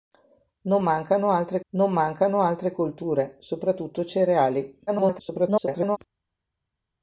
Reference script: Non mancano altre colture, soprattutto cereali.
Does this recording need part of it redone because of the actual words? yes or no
yes